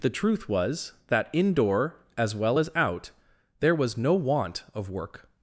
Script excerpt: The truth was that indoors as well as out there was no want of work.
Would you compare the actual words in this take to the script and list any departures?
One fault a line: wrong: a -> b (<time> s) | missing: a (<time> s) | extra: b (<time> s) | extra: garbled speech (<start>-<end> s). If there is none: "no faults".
wrong: indoors -> indoor (1.3 s)